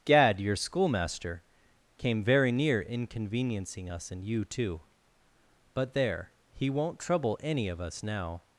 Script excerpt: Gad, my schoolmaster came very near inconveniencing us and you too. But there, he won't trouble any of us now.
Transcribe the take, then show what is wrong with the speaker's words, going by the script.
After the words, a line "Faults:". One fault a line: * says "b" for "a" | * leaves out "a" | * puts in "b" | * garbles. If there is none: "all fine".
Gad, your schoolmaster came very near inconveniencing us and you too. But there, he won't trouble any of us now.
Faults:
* says "your" for "my"